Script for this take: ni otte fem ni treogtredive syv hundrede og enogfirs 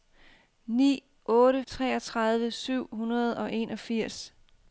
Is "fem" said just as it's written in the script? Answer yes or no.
no